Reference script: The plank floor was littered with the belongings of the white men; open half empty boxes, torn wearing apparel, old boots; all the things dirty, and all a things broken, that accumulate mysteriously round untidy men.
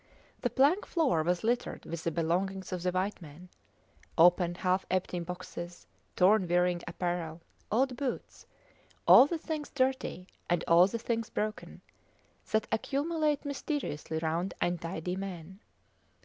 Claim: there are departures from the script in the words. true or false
true